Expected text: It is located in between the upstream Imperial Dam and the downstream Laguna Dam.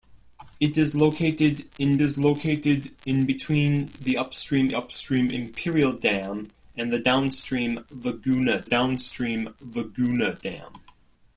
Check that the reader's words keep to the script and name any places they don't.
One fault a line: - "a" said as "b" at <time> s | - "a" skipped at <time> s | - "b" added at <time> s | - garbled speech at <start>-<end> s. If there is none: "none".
- "is located in" added at 2.0 s
- "upstream" added at 4.7 s
- "downstream Laguna" added at 8.6 s